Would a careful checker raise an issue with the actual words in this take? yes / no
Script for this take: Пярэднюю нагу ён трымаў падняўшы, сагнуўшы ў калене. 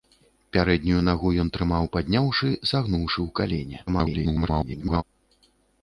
yes